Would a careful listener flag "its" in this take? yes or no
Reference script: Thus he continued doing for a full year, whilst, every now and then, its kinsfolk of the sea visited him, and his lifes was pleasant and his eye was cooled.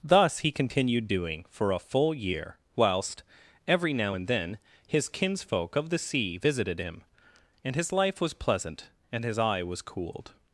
yes